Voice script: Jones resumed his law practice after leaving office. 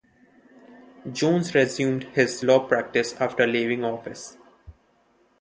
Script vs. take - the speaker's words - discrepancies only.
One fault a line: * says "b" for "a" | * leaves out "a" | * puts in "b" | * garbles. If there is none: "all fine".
all fine